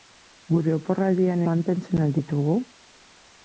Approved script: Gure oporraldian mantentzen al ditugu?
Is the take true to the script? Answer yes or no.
yes